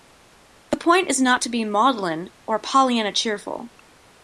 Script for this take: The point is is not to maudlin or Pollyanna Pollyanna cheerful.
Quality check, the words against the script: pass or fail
fail